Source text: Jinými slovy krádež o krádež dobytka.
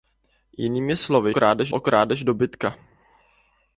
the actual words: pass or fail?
pass